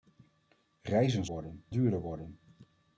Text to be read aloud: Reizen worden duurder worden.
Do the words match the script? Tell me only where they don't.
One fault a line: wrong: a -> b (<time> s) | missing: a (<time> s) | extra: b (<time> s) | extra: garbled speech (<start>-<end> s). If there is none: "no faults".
no faults